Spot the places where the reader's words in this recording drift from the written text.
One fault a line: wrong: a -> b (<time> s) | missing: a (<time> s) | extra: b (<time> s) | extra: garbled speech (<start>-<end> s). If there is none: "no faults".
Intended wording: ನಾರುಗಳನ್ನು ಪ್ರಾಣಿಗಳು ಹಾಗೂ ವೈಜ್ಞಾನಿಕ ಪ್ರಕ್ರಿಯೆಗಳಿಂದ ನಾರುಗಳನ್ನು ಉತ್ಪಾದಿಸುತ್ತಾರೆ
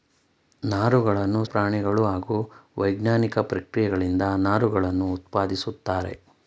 no faults